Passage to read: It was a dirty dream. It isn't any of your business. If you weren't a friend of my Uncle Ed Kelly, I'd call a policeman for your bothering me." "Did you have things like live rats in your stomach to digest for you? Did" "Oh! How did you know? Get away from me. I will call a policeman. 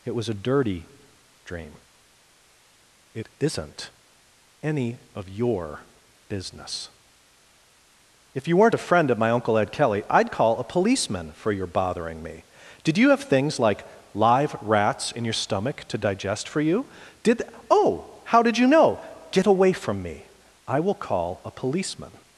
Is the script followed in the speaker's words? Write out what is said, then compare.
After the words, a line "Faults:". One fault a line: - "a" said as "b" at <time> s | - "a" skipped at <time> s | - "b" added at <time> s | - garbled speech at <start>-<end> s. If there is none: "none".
It was a dirty dream. It isn't any of your business. If you weren't a friend of my Uncle Ed Kelly, I'd call a policeman for your bothering me." "Did you have things like live rats in your stomach to digest for you? Did" "Oh! How did you know? Get away from me. I will call a policeman.
Faults:
none